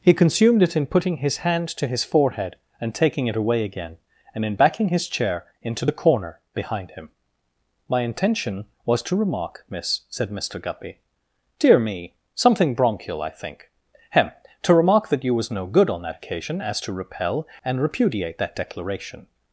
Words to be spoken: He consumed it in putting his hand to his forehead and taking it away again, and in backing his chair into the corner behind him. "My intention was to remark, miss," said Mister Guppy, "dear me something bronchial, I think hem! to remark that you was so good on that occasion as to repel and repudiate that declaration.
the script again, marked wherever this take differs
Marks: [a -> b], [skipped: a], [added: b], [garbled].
He consumed it in putting his hand to his forehead and taking it away again, and in backing his chair into the corner behind him. "My intention was to remark, miss," said Mister Guppy, "dear me something bronchial, I think hem! to remark that you was [so -> no] good on that occasion as to repel and repudiate that declaration.